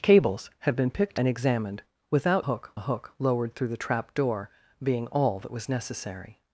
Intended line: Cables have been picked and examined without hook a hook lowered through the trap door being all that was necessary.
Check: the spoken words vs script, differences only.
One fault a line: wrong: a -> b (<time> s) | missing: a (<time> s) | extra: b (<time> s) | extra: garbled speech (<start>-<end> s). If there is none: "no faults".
no faults